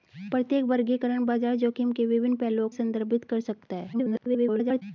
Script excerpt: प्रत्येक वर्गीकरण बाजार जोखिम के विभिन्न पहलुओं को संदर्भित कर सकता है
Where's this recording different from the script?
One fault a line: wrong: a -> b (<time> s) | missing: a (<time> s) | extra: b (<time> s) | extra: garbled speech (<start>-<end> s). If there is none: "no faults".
missing: को (2.7 s)
extra: garbled speech (3.9-4.8 s)